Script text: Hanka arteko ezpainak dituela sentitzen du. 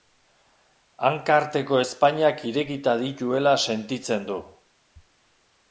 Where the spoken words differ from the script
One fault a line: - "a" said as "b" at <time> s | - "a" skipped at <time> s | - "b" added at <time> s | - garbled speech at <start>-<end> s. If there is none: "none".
- "irekita" added at 2.5 s